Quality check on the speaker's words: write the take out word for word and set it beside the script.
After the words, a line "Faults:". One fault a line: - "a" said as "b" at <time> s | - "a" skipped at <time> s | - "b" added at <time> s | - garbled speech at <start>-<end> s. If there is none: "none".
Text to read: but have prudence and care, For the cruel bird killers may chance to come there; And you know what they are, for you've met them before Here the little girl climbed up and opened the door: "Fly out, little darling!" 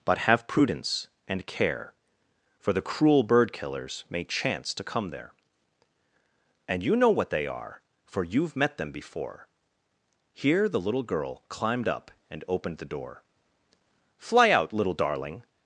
but have prudence and care, For the cruel bird killers may chance to come there; And you know what they are, for you've met them before Here the little girl climbed up and opened the door: "Fly out, little darling!"
Faults:
none